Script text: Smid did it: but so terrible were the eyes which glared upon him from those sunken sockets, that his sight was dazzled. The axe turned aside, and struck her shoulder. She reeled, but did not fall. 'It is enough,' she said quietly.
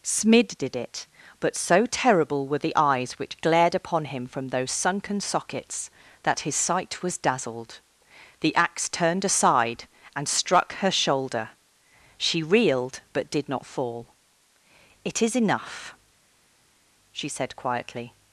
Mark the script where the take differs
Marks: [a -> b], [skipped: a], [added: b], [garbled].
Smid did it: but so terrible were the eyes which glared upon him from those sunken sockets, that his sight was dazzled. The axe turned aside, and struck her shoulder. She reeled, but did not fall. 'It is enough,' she said quietly.